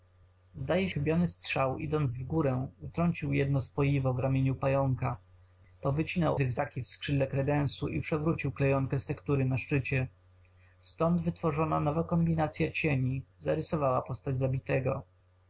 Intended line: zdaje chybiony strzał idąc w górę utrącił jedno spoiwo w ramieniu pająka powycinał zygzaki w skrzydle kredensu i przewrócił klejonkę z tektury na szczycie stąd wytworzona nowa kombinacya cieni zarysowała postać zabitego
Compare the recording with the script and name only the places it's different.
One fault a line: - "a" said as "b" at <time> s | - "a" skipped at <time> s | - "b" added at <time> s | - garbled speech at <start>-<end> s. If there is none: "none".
none